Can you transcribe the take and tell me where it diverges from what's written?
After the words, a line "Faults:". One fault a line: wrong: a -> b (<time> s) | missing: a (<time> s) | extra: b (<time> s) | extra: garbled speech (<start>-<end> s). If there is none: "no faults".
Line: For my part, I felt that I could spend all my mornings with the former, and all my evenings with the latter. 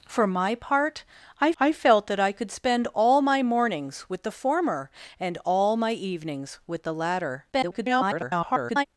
For my part, I I felt that I could spend all my mornings with the former, and all my evenings with the latter. [garbled]
Faults:
extra: I (1.6 s)
extra: garbled speech (7.5-8.9 s)